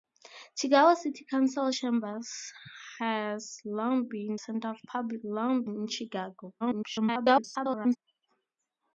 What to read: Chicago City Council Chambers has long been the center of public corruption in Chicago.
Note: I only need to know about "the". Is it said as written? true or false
false